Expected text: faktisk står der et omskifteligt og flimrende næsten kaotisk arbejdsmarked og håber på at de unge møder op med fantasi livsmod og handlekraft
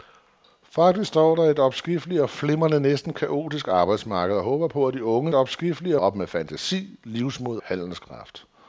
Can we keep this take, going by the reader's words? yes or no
no